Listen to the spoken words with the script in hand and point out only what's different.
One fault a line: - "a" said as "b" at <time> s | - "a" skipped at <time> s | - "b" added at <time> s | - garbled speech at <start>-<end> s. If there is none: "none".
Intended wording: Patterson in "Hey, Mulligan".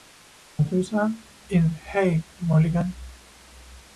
none